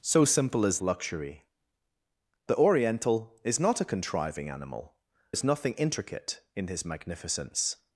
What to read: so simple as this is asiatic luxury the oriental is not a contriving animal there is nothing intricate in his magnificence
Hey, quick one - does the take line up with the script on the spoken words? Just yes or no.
no